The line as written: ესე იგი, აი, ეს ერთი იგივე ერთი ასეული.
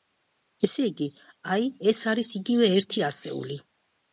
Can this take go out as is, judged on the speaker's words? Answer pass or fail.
fail